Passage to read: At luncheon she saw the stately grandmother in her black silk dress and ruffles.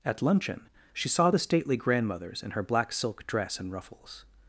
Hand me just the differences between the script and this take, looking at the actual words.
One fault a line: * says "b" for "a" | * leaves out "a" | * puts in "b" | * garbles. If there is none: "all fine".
* says "grandmothers" for "grandmother"